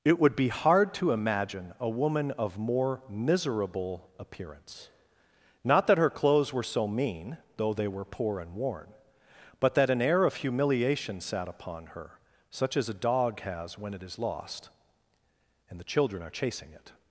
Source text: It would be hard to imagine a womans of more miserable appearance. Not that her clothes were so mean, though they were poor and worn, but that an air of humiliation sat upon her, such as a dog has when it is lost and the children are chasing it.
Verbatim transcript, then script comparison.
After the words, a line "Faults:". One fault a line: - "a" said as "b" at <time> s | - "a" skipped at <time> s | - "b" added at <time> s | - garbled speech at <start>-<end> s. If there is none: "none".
It would be hard to imagine a woman of more miserable appearance. Not that her clothes were so mean, though they were poor and worn, but that an air of humiliation sat upon her, such as a dog has when it is lost and the children are chasing it.
Faults:
- "womans" said as "woman" at 1.9 s